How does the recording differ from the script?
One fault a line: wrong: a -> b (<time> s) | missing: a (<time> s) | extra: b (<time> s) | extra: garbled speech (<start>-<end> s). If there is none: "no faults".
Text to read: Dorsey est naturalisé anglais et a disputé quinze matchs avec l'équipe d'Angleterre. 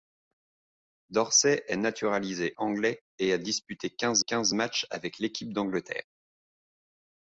extra: quinze (4.2 s)